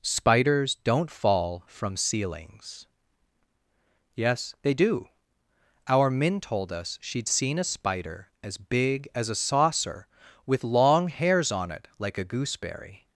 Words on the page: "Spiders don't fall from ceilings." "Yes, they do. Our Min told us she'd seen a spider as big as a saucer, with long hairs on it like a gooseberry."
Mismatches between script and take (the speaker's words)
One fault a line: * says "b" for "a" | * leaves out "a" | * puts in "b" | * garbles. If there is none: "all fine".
all fine